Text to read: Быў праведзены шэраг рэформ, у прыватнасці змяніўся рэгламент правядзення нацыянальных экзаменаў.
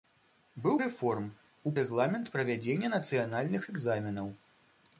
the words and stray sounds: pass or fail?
fail